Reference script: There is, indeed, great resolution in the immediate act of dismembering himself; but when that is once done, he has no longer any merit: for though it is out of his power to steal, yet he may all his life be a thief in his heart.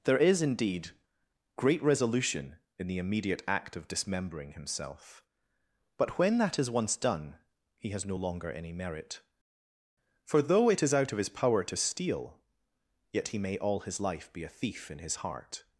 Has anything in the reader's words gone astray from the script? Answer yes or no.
no